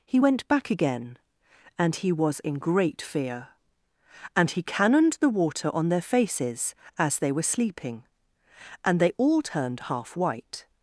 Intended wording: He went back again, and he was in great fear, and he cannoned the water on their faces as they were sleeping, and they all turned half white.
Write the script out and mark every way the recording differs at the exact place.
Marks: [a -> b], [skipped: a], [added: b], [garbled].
He went back again, and he was in great fear, and he cannoned the water on their faces as they were sleeping, and they all turned half white.